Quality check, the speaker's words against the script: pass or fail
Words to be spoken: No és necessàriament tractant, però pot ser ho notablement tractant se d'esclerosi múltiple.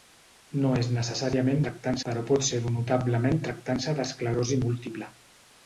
pass